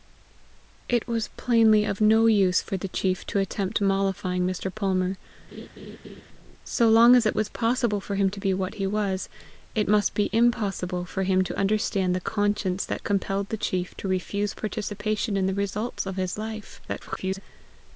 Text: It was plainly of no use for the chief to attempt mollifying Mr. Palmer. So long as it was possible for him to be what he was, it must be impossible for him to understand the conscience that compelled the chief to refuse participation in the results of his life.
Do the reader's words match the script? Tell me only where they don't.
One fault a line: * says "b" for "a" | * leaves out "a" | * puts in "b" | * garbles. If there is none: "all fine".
* garbles